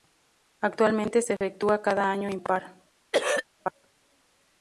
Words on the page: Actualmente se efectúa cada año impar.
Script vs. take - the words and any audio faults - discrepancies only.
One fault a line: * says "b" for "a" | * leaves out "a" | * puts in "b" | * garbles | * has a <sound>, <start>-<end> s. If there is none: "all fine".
* has a dropout, 1.4-1.4 s
* has a throat clearing, 3.1-3.5 s